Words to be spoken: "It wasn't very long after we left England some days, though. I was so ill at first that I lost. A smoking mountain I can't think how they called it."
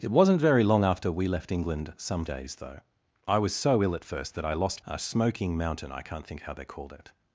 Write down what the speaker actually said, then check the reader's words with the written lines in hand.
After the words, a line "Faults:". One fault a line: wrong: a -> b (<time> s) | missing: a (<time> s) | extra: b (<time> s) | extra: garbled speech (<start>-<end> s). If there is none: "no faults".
"It wasn't very long after we left England some days, though. I was so ill at first that I lost. A smoking mountain I can't think how they called it."
Faults:
no faults